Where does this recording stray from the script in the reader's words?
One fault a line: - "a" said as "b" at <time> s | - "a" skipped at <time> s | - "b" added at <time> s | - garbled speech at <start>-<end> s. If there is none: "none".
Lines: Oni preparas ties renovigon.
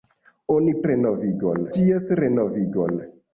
- "preparas" said as "renovigon" at 0.9 s